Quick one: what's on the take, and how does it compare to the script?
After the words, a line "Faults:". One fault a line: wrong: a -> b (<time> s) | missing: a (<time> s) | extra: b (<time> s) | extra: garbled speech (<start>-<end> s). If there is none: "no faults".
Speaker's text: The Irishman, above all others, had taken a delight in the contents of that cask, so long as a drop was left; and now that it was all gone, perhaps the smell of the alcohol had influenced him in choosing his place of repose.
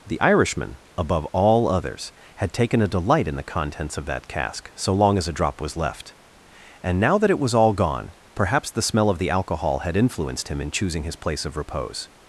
The Irishman, above all others, had taken a delight in the contents of that cask, so long as a drop was left; and now that it was all gone, perhaps the smell of the alcohol had influenced him in choosing his place of repose.
Faults:
no faults